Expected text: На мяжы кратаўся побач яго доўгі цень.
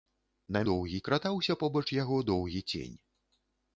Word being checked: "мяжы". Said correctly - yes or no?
no